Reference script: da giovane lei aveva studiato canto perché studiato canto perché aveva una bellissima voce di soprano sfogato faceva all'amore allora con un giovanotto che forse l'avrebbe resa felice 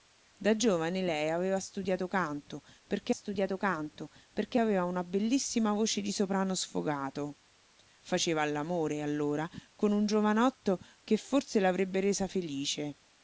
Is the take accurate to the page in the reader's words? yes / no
yes